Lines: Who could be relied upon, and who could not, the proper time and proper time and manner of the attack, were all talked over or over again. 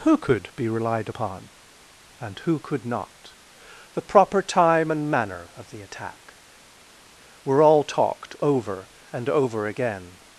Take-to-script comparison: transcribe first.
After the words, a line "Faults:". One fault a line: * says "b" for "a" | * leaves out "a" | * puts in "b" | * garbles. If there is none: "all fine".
Who could be relied upon, and who could not, the proper time and manner of the attack, were all talked over and over again.
Faults:
* leaves out "proper time and"
* says "and" for "or"